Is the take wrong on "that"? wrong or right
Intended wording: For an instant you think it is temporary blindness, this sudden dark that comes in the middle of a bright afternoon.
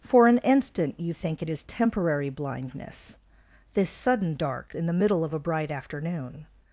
wrong